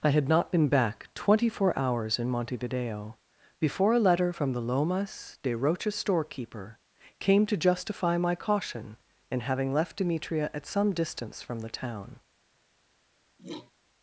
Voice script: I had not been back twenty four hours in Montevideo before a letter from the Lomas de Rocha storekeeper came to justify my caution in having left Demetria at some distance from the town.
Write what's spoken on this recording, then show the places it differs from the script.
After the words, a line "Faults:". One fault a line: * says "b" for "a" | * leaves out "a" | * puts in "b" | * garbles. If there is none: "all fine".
I had not been back twenty four hours in Montevideo before a letter from the Lomas de Rocha storekeeper came to justify my caution in having left Demetria at some distance from the town.
Faults:
all fine